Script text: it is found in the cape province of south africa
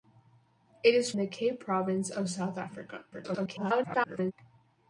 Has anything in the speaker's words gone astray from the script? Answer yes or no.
yes